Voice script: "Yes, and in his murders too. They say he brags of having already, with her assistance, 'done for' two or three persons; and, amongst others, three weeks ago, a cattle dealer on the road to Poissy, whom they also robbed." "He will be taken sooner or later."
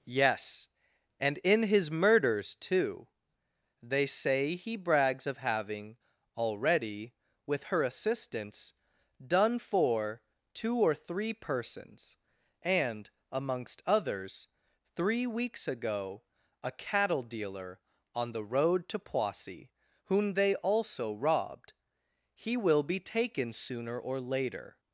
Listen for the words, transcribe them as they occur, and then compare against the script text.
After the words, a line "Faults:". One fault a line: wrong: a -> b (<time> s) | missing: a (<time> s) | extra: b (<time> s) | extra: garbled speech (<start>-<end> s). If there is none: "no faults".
"Yes, and in his murders too. They say he brags of having already, with her assistance, 'done for' two or three persons; and, amongst others, three weeks ago, a cattle dealer on the road to Poissy, whom they also robbed." "He will be taken sooner or later."
Faults:
no faults